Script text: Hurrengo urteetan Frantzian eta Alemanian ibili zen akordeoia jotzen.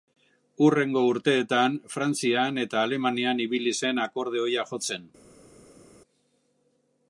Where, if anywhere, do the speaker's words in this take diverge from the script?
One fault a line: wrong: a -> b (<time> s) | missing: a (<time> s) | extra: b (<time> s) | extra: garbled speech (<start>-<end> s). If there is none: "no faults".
no faults